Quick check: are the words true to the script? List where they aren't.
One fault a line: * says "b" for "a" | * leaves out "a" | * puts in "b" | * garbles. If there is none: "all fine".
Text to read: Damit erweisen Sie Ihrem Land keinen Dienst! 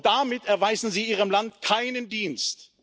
all fine